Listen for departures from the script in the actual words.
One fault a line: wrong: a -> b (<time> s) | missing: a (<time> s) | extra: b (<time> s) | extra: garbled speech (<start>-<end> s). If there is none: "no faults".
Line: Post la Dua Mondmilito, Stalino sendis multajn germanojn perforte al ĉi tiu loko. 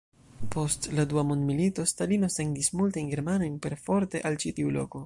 no faults